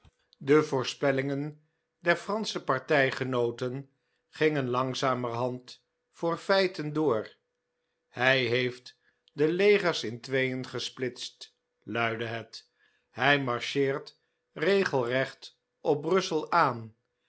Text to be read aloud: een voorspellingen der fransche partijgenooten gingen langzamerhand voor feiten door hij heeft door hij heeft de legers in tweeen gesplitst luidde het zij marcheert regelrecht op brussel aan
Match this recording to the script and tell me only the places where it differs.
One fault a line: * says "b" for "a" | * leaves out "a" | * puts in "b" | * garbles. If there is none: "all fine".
* says "de" for "een"
* leaves out "door hij heeft"
* says "hij" for "zij"